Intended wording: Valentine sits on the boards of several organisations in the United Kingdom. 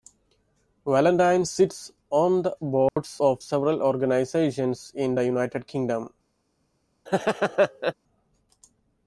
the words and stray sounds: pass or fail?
fail